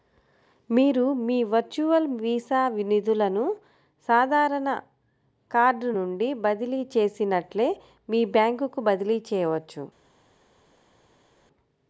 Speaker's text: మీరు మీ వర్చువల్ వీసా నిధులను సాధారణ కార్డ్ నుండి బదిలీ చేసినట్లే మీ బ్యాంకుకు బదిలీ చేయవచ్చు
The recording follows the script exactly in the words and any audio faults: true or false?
true